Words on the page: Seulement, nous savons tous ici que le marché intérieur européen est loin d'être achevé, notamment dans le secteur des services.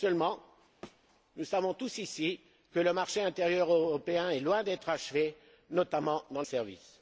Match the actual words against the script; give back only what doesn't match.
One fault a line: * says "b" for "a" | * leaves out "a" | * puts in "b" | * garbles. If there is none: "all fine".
* leaves out "le secteur des"